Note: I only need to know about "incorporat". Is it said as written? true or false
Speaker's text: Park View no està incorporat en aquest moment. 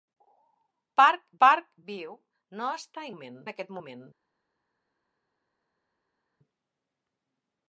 false